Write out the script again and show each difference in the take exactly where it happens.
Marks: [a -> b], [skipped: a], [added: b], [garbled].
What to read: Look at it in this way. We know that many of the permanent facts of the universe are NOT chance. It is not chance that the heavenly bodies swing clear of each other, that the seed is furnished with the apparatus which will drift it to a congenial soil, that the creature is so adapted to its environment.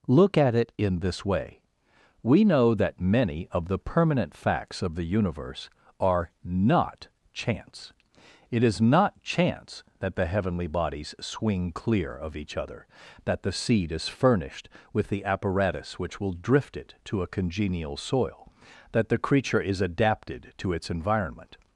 Look at it in this way. We know that many of the permanent facts of the universe are NOT chance. It is not chance that the heavenly bodies swing clear of each other, that the seed is furnished with the apparatus which will drift it to a congenial soil, that the creature is [skipped: so] adapted to its environment.